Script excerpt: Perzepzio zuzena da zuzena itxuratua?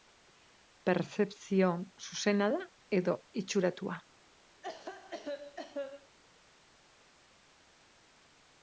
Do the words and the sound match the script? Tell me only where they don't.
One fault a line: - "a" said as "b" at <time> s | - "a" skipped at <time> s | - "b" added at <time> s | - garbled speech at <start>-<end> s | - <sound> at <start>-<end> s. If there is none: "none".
- "zuzena" said as "edo" at 3.0 s
- cough at 4.6-6.2 s